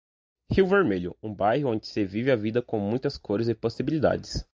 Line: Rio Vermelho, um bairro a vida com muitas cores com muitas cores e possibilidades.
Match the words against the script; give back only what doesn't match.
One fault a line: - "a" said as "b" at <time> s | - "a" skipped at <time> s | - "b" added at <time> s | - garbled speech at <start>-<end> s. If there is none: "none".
- "a vida com muitas cores" said as "onde se vive a vida" at 1.7 s